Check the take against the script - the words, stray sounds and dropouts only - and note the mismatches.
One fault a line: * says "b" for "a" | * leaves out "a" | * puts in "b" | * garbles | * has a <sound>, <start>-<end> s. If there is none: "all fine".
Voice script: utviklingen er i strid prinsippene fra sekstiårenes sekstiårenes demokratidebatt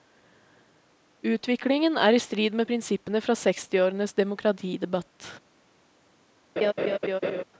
* puts in "med"
* leaves out "sekstiårenes"
* has a laugh, 6.6-7.4 s